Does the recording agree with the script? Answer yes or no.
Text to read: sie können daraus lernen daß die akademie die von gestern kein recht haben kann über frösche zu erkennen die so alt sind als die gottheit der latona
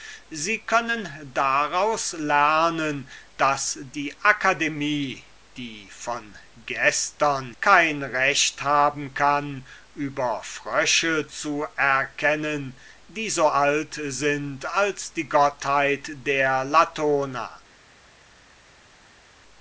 yes